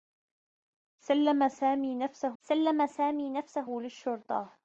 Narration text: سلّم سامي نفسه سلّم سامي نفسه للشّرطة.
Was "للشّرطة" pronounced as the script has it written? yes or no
yes